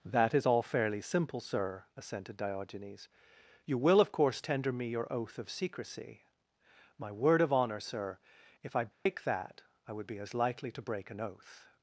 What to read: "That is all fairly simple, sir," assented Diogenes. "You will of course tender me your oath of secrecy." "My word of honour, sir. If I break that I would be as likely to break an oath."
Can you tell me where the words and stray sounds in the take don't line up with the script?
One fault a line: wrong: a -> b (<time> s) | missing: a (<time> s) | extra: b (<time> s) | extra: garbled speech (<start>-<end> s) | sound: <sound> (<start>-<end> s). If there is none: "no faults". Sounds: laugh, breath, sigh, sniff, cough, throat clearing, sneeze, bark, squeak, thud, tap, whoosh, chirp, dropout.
sound: dropout (8.9-9.1 s)